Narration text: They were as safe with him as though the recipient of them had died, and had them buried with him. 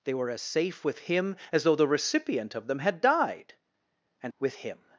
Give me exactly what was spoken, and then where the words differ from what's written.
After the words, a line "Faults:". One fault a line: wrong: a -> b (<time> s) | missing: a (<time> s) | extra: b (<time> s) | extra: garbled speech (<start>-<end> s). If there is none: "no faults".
They were as safe with him as though the recipient of them had died, and with him.
Faults:
missing: had them buried (4.3 s)